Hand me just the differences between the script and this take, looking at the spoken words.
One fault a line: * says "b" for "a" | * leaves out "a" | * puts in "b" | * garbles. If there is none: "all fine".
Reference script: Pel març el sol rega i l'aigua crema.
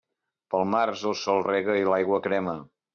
all fine